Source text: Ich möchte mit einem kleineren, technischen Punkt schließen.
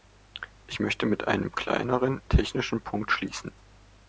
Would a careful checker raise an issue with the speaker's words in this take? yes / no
no